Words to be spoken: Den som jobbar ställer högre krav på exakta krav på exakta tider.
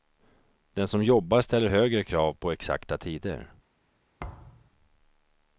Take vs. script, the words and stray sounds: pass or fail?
fail